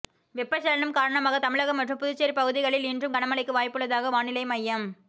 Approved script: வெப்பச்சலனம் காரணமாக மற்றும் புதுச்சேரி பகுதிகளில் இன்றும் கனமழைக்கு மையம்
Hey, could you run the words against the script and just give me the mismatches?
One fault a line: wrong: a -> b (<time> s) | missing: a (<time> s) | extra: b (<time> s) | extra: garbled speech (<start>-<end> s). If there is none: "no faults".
extra: தமிழகம் (1.4 s)
extra: வாய்ப்புள்ளதாக வானிலை (3.6 s)